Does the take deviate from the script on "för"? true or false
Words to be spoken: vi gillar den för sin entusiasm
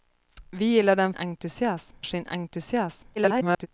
true